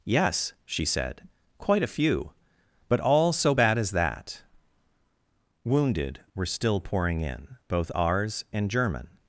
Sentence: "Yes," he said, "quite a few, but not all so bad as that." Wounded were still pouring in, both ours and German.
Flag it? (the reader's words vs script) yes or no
yes